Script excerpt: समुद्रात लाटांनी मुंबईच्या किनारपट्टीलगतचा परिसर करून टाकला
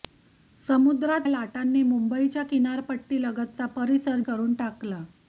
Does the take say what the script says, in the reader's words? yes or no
yes